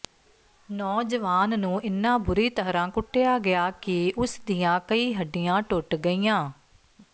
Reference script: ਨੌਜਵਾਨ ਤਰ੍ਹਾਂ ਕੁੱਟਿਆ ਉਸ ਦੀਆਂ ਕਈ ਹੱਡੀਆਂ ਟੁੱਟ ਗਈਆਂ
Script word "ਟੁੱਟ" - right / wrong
right